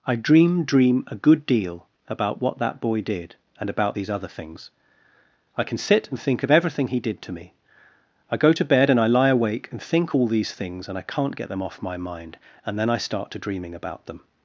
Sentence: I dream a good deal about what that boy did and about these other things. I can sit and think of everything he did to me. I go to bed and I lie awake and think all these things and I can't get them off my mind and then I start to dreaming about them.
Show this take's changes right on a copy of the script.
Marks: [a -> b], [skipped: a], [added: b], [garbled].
I dream [added: dream] a good deal about what that boy did and about these other things. I can sit and think of everything he did to me. I go to bed and I lie awake and think all these things and I can't get them off my mind and then I start to dreaming about them.